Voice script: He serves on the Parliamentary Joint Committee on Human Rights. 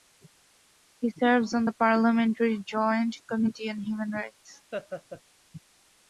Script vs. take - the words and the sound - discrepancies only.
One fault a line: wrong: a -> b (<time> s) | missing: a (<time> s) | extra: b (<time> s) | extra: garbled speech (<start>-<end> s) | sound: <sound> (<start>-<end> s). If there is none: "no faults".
sound: laugh (4.7-5.2 s)